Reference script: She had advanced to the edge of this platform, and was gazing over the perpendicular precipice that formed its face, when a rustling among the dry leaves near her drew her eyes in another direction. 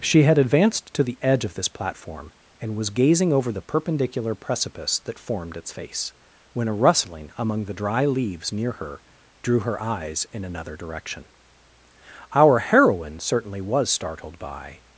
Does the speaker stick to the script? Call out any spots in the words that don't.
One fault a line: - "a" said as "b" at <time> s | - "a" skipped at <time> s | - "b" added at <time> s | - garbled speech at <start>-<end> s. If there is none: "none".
- "Our heroine certainly was startled by" added at 12.3 s